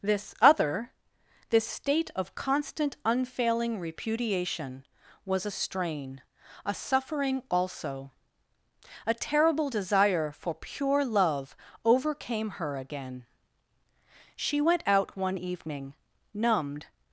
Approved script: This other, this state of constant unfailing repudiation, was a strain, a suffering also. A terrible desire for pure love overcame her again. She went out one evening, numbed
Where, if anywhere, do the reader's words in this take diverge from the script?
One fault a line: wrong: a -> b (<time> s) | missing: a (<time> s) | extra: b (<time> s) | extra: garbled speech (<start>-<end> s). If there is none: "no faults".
no faults